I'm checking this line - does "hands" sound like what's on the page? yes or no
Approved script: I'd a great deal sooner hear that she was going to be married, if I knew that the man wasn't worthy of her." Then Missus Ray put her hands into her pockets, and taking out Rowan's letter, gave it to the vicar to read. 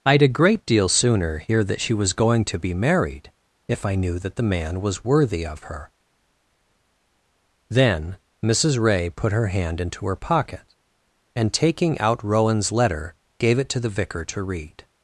no